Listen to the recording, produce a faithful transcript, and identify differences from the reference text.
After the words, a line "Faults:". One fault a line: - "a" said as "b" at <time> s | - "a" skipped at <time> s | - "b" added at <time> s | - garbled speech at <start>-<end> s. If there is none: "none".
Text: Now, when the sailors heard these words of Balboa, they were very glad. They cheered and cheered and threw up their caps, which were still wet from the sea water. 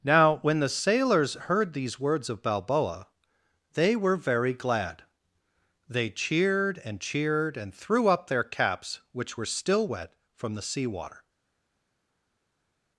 Now, when the sailors heard these words of Balboa, they were very glad. They cheered and cheered and threw up their caps, which were still wet from the sea water.
Faults:
none